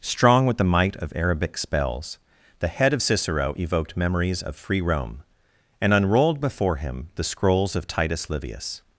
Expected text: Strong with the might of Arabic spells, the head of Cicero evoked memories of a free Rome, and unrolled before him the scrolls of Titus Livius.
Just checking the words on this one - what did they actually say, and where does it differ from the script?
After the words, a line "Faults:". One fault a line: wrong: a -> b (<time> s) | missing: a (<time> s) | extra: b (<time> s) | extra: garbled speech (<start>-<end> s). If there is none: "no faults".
Strong with the might of Arabic spells, the head of Cicero evoked memories of free Rome, and unrolled before him the scrolls of Titus Livius.
Faults:
missing: a (4.6 s)